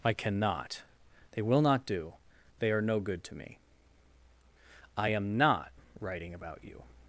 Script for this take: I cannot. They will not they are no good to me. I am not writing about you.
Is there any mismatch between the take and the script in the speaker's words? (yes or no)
yes